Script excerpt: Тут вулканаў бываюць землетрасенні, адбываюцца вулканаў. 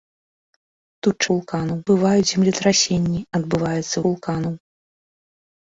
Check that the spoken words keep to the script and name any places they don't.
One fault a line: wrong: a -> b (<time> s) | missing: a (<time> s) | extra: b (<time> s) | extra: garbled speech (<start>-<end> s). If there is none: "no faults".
no faults